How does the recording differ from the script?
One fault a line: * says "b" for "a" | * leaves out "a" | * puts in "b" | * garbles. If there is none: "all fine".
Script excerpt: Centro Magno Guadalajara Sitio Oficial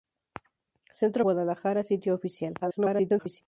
* leaves out "Magno"
* garbles